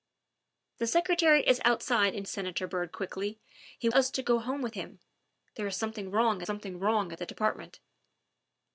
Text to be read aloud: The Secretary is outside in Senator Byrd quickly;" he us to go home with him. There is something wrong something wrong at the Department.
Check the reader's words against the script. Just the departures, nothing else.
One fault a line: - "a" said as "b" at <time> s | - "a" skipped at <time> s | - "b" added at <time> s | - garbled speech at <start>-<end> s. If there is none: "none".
none